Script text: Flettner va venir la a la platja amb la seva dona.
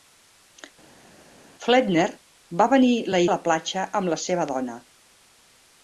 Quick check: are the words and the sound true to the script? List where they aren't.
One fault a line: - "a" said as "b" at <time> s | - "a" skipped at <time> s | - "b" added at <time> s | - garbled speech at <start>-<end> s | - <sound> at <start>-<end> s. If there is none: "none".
none